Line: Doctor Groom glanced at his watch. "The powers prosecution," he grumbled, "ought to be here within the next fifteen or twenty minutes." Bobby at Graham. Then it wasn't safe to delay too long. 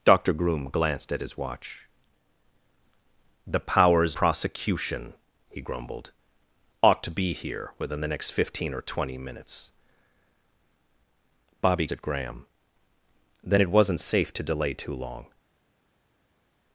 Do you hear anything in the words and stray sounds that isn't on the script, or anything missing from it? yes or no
no